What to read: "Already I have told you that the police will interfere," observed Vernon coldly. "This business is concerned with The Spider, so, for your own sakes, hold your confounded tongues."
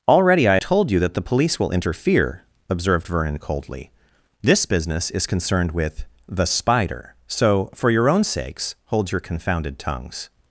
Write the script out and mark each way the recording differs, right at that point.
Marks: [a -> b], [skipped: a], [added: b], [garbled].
"Already I [skipped: have] told you that the police will interfere," observed Vernon coldly. "This business is concerned with The Spider, so, for your own sakes, hold your confounded tongues."